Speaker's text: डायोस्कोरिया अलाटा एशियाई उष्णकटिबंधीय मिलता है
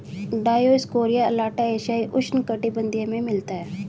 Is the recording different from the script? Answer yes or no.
yes